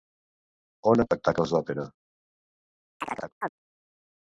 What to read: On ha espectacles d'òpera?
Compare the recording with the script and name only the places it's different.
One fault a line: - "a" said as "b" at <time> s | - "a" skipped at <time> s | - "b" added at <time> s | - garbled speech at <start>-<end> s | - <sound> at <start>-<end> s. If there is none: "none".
- chirp at 3.0-3.5 s